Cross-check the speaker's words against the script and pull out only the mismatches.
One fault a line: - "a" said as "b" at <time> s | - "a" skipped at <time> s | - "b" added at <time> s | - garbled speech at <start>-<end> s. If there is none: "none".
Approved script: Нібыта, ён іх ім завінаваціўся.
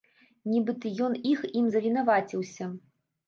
none